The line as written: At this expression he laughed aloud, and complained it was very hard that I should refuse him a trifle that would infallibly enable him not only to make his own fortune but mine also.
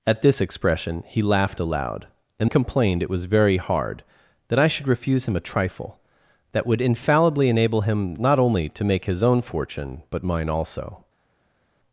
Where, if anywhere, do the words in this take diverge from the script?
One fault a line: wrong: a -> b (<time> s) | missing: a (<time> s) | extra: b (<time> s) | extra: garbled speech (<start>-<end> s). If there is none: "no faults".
no faults